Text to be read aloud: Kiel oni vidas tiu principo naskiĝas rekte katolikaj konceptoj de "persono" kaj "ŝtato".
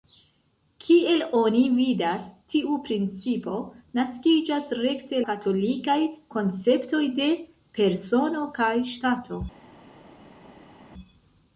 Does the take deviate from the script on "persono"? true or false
false